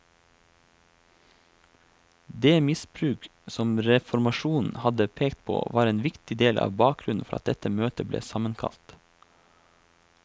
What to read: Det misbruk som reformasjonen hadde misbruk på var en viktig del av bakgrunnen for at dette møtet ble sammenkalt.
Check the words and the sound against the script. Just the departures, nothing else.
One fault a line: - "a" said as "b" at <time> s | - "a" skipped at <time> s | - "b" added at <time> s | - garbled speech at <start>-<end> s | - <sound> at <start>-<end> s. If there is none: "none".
- "misbruk" said as "pekt" at 5.2 s